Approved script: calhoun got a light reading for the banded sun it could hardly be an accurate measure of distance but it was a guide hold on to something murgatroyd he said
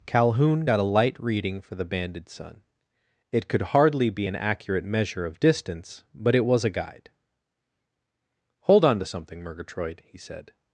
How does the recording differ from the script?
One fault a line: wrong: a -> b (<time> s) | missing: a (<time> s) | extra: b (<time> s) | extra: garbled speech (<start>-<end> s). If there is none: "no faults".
no faults